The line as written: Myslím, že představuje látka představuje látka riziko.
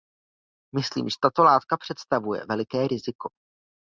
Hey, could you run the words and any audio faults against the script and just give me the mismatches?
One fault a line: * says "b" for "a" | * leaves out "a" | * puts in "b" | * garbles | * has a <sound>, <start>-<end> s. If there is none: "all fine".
* says "tato" for "představuje"
* says "veliké" for "látka"